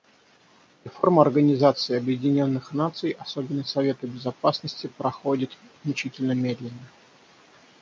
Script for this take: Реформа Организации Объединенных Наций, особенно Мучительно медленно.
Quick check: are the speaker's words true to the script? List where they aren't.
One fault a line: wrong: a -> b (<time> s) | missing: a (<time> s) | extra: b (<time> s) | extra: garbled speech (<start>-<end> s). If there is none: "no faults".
extra: Совета Безопасности проходит (3.6 s)